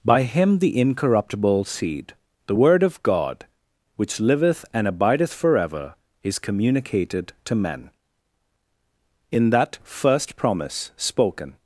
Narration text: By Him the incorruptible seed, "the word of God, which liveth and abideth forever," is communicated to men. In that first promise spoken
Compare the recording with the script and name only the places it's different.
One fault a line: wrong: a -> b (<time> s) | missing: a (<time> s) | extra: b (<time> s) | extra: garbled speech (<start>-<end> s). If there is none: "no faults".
no faults